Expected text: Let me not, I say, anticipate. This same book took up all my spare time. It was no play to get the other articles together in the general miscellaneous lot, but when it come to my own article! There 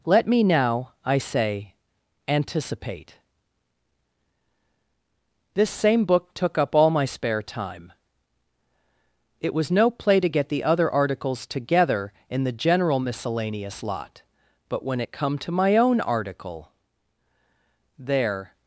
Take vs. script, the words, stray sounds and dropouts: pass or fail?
fail